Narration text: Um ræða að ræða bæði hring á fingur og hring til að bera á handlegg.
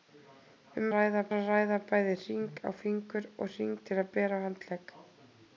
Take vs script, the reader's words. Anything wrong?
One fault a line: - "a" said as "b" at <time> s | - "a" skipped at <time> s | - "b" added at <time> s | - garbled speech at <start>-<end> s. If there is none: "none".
none